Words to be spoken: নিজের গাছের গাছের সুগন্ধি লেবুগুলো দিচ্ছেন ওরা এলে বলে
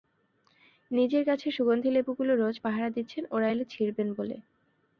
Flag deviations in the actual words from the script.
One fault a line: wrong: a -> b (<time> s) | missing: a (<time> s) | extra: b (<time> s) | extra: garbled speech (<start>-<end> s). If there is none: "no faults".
missing: গাছের (1.5 s)
extra: রোজ পাহারা (2.4 s)
extra: ছিঁড়বেন (3.7 s)